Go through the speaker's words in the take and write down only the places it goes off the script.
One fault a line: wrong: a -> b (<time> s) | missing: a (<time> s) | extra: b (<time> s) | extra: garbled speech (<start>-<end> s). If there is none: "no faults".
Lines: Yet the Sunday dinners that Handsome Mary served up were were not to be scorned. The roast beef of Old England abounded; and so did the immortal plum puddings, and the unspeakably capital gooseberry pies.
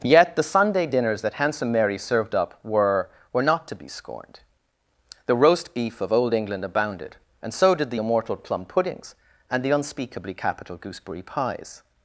no faults